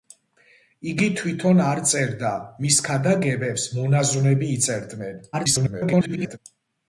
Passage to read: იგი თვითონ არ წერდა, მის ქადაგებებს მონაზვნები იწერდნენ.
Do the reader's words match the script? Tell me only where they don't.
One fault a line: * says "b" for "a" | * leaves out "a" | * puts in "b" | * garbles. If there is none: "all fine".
* garbles